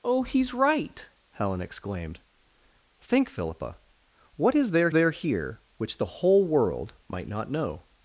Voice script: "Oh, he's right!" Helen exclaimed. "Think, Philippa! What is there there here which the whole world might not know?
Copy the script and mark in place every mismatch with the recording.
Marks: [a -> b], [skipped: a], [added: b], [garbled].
"Oh, he's right!" Helen exclaimed. "Think, Philippa! What is there there here which the whole world might not know?